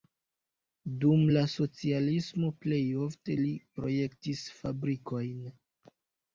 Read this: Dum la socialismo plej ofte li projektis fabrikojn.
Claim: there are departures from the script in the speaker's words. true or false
false